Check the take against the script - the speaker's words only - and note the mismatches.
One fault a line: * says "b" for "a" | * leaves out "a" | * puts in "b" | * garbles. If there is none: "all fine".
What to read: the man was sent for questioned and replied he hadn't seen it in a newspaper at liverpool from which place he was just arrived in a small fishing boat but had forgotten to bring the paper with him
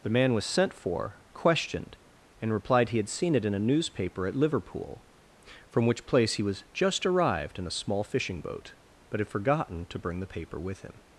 * says "had" for "hadn't"